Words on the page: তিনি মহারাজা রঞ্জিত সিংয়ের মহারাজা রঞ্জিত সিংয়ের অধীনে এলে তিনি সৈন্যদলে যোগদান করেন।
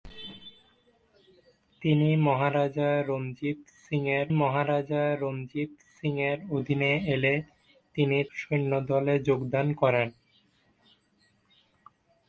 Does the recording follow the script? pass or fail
pass